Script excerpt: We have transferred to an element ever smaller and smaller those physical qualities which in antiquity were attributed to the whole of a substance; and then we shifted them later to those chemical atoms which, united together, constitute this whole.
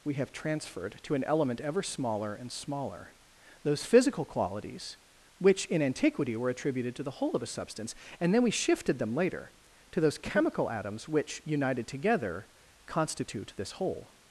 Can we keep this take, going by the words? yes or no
yes